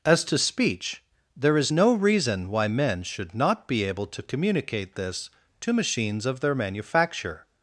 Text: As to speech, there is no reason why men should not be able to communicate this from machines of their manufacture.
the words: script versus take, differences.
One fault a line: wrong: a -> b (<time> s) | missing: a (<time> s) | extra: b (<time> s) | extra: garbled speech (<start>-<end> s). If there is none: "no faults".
wrong: from -> to (5.6 s)